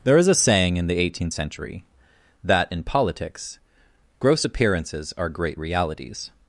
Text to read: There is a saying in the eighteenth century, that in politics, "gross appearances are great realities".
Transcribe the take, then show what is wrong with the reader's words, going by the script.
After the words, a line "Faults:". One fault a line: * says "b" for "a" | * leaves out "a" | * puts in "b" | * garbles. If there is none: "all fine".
There is a saying in the eighteenth century, that in politics, "gross appearances are great realities".
Faults:
all fine